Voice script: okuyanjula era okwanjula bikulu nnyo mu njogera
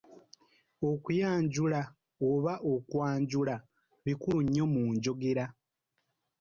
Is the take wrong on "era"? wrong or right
wrong